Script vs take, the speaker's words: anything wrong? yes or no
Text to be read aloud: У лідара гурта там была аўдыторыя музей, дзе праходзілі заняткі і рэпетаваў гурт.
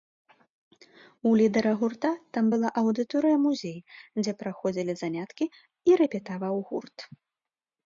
no